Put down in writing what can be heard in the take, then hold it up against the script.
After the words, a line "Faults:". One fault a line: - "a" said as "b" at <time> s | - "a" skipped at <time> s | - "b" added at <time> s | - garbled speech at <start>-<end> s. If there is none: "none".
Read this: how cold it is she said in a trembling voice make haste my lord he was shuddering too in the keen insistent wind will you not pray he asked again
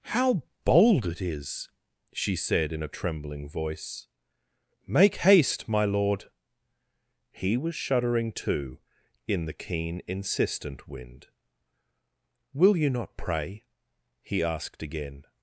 how bold it is she said in a trembling voice make haste my lord he was shuddering too in the keen insistent wind will you not pray he asked again
Faults:
- "cold" said as "bold" at 0.7 s